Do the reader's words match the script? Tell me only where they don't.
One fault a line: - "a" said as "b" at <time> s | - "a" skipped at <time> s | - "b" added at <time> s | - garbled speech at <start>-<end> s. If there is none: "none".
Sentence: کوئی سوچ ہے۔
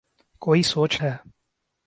none